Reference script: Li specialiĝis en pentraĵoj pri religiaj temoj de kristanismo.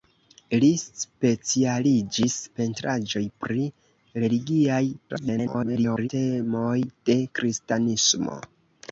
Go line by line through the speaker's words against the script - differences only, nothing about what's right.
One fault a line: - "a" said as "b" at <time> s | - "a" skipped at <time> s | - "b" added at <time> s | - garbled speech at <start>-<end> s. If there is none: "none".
- "en" skipped at 2.4 s
- garbled speech at 5.1-6.1 s